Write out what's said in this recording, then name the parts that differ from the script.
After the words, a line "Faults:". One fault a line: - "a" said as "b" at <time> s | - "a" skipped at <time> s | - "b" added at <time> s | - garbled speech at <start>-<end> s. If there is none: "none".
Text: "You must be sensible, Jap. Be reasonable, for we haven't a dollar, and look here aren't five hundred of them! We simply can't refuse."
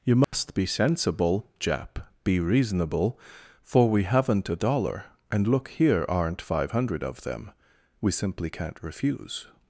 "You must be sensible, Jap. Be reasonable, for we haven't a dollar, and look here aren't five hundred of them! We simply can't refuse."
Faults:
none